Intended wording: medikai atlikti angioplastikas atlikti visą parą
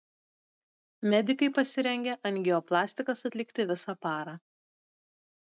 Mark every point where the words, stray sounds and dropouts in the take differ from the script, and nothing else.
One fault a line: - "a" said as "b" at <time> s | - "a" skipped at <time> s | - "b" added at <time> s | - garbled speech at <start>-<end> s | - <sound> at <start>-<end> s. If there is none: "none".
- "atlikti" said as "pasirengę" at 1.6 s